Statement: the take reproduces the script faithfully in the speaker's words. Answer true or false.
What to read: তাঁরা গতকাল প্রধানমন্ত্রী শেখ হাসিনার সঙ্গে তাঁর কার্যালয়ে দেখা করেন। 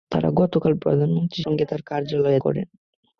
false